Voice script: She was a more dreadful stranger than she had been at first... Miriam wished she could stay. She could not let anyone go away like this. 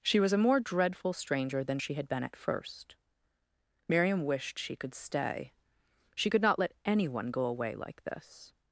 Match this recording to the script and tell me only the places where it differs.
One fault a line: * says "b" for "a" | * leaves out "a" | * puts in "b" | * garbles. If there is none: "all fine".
all fine